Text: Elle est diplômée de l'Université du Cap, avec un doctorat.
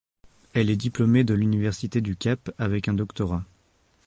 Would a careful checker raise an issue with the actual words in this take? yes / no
no